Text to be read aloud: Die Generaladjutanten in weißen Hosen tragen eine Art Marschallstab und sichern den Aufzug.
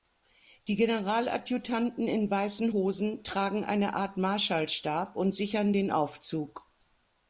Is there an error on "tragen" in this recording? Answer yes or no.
no